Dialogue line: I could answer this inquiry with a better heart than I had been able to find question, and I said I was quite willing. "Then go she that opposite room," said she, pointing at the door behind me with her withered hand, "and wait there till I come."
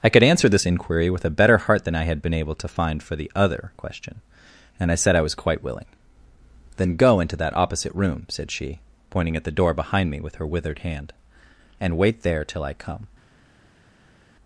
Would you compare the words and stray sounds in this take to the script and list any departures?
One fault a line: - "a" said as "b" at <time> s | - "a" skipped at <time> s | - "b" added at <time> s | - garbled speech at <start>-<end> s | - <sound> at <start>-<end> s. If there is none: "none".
- "for the other" added at 3.0 s
- "she" said as "into" at 7.2 s